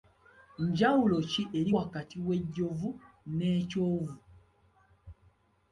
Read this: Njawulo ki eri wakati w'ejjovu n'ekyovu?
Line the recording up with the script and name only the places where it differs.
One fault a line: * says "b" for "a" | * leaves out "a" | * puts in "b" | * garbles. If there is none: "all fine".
all fine